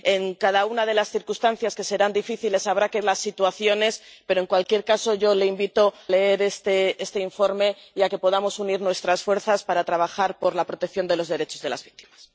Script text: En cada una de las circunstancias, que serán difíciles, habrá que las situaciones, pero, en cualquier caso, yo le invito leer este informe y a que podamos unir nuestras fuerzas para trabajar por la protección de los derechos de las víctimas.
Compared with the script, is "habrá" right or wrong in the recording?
right